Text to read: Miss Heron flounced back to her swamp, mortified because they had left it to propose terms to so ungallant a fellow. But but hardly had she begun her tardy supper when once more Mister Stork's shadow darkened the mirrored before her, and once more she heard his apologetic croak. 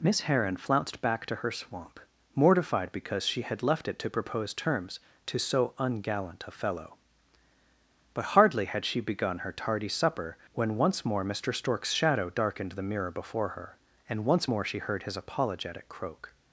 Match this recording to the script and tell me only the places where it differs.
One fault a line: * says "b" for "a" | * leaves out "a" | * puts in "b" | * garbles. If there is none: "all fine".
* says "she" for "they"
* leaves out "but"
* says "mirror" for "mirrored"